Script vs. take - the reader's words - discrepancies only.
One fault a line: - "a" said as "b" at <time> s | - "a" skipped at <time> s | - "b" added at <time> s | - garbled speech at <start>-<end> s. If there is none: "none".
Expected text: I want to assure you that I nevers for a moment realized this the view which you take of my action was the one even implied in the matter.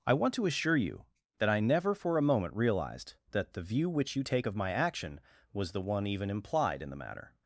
- "nevers" said as "never" at 1.6 s
- "this" said as "that" at 3.3 s